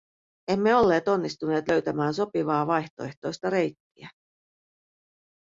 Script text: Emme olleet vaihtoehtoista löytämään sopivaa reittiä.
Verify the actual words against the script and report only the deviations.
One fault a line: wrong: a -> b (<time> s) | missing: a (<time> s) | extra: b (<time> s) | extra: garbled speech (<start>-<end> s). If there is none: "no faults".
wrong: vaihtoehtoista -> onnistuneet (1.1 s)
extra: vaihtoehtoista (2.7 s)